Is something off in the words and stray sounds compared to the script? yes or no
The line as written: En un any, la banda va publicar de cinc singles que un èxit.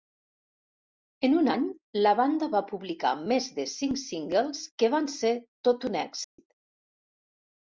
yes